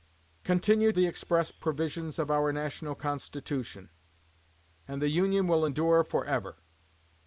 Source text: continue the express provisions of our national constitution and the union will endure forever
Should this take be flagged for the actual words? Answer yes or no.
no